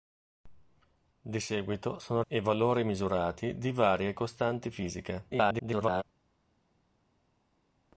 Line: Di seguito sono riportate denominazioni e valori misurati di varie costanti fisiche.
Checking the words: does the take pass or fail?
fail